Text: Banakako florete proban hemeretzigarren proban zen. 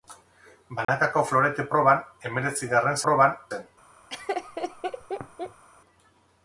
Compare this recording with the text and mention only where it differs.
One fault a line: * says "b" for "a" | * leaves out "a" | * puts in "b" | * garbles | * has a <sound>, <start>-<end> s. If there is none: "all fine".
* has a dropout, 0.8-0.9 s
* has a laugh, 4.1-5.6 s